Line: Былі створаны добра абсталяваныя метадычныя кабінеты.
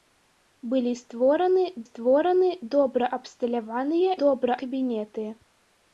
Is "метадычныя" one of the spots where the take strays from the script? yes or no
yes